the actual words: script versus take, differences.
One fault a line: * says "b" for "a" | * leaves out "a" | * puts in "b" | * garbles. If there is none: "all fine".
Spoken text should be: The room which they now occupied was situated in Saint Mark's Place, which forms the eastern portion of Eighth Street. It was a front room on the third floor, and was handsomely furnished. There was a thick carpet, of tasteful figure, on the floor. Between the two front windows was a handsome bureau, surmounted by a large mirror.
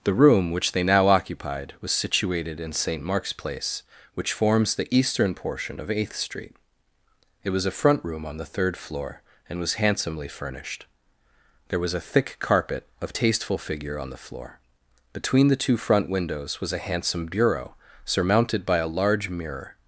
all fine